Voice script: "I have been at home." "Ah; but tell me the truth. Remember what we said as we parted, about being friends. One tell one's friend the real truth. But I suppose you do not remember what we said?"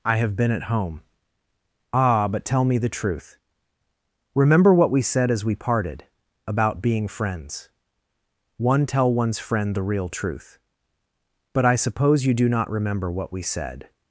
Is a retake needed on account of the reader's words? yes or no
no